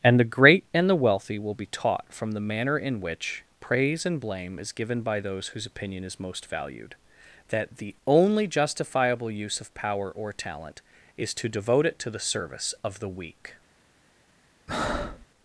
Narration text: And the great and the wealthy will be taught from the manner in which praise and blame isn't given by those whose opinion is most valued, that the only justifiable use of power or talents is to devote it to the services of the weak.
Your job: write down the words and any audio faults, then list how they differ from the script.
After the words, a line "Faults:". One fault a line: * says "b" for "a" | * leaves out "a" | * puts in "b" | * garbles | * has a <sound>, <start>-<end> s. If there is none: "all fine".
And the great and the wealthy will be taught from the manner in which praise and blame is given by those whose opinion is most valued, that the only justifiable use of power or talent is to devote it to the service of the weak.
Faults:
* says "is" for "isn't"
* says "talent" for "talents"
* says "service" for "services"
* has a breath, 14.7-15.3 s